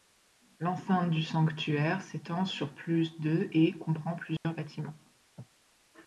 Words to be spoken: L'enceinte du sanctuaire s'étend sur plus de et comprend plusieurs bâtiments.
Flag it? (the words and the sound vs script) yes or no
yes